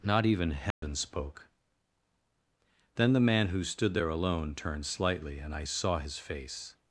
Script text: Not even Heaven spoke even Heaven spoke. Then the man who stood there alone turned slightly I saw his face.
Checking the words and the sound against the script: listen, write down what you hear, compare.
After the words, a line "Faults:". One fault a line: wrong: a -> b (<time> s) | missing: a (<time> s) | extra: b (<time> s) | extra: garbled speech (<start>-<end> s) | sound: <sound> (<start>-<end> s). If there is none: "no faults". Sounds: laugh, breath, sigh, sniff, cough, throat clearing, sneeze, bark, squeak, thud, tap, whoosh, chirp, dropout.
Not even Heaven spoke. Then the man who stood there alone turned slightly and I saw his face.
Faults:
sound: dropout (0.7-0.8 s)
missing: even Heaven spoke (1.5 s)
extra: and (5.4 s)